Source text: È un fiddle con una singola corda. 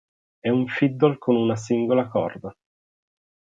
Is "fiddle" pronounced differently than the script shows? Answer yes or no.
no